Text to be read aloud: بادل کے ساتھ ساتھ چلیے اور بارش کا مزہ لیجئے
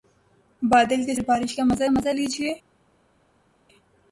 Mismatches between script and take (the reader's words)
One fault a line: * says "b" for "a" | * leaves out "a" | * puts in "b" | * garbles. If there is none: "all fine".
* leaves out "ساتھ ساتھ چلیے"
* puts in "مزہ"